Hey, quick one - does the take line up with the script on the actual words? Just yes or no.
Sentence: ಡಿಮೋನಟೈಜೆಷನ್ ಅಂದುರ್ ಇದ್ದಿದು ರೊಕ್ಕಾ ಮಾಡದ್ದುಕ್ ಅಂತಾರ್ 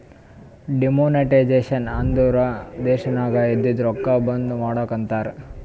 no